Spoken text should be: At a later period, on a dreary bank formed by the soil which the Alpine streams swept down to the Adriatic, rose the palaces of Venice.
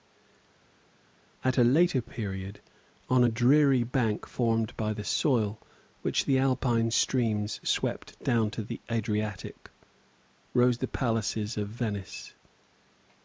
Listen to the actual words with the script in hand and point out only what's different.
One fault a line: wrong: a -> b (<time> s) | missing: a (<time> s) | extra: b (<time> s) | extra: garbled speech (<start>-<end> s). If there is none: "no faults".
no faults